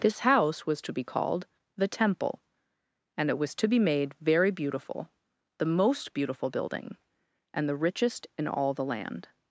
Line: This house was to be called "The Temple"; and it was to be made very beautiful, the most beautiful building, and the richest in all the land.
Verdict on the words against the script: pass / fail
pass